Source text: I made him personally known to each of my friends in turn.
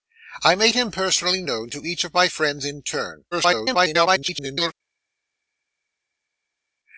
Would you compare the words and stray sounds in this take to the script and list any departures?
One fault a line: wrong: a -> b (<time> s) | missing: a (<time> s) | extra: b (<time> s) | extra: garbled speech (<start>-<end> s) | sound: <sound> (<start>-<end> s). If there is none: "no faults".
extra: garbled speech (3.3-4.7 s)